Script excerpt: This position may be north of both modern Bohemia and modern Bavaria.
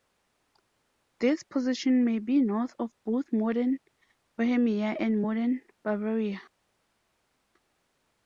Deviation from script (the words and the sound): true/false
false